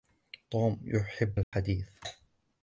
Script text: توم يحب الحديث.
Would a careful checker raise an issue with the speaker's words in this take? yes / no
no